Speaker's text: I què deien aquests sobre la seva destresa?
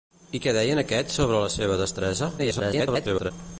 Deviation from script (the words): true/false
true